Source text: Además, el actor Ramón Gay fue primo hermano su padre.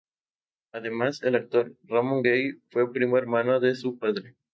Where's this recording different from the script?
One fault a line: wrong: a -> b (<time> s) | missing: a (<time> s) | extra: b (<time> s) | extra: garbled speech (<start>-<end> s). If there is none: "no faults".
extra: de (3.6 s)